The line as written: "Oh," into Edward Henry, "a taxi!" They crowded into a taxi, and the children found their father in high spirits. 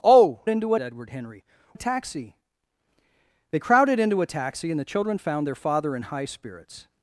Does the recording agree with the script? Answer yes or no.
yes